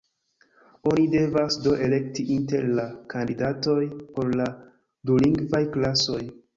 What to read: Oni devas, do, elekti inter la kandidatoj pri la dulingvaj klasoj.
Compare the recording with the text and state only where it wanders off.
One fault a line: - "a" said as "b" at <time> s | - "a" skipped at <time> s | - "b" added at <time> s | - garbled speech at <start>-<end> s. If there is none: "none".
- "pri" said as "por" at 4.2 s